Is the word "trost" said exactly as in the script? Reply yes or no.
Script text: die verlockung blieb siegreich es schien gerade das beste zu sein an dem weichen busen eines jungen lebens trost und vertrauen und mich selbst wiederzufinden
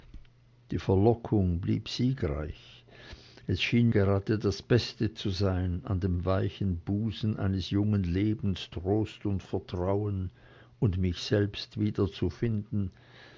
yes